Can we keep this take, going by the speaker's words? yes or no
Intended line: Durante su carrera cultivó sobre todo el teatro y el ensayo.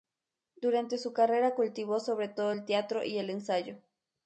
yes